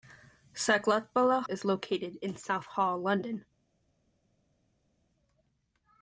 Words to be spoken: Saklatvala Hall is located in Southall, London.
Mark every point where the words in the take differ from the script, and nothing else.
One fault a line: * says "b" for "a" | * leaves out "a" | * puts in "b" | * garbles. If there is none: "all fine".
* leaves out "Hall"